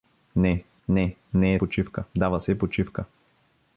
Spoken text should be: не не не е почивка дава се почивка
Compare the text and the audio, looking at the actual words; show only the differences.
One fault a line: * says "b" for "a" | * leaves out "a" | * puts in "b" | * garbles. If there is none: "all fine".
all fine